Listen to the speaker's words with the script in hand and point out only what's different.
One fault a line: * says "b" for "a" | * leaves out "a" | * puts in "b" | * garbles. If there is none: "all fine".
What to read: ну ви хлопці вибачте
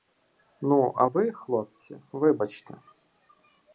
* puts in "а"